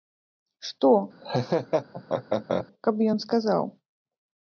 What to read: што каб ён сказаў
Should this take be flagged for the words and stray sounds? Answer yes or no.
yes